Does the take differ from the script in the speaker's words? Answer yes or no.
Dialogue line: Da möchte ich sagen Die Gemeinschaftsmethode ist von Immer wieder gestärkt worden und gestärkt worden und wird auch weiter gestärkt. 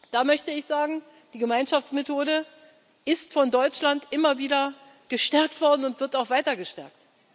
yes